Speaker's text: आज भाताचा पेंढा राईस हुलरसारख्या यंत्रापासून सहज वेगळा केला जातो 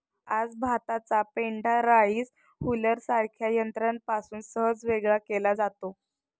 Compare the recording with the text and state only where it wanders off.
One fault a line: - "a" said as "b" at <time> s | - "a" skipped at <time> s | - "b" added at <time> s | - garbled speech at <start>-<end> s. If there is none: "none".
none